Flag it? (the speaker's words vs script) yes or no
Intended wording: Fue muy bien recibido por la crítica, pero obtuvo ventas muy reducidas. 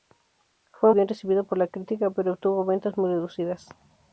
yes